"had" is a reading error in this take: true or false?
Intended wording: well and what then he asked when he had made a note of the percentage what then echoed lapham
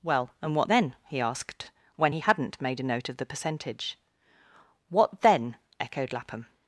true